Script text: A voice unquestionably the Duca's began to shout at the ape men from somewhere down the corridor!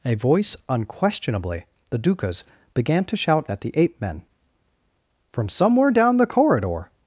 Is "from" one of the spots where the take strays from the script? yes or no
no